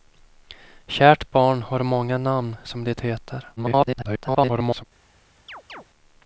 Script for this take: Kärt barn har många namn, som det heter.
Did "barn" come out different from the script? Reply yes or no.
no